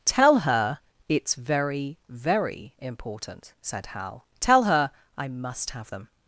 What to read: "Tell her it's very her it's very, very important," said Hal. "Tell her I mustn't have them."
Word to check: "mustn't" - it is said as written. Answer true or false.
false